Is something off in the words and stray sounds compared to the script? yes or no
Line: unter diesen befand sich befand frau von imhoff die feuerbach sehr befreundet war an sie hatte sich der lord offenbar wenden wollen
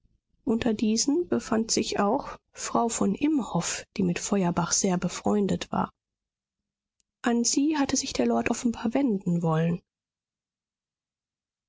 yes